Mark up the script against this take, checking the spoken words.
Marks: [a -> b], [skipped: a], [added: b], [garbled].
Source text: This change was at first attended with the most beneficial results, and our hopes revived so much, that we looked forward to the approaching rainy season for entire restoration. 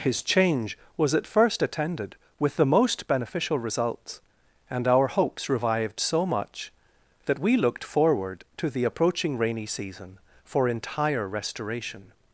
[This -> His] change was at first attended with the most beneficial results, and our hopes revived so much, that we looked forward to the approaching rainy season for entire restoration.